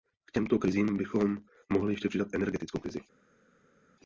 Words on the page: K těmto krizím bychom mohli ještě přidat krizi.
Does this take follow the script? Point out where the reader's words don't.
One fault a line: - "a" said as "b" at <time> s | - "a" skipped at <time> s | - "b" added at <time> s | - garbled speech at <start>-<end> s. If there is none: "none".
- "energetickou" added at 2.3 s